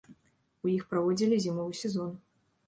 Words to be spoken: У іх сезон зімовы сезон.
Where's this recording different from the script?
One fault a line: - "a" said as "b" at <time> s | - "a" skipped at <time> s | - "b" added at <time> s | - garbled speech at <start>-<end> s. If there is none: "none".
- "сезон" said as "праводзілі" at 0.9 s